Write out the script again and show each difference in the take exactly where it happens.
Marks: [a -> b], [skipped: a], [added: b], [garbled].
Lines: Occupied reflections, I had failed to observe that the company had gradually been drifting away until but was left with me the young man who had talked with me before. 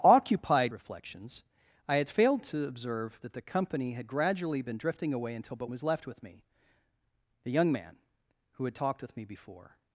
Occupied reflections, I had failed to observe that the company had gradually been drifting away until but was left with me the young man who had talked with me before.